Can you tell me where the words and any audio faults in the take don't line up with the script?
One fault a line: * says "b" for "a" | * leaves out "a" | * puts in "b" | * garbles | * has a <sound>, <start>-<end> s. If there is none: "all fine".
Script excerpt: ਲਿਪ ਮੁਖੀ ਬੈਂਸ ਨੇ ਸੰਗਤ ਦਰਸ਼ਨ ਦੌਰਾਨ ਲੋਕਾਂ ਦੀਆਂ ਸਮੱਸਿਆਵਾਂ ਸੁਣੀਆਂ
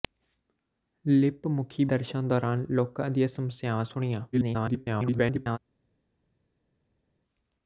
* leaves out "ਬੈਂਸ ਨੇ ਸੰਗਤ"
* garbles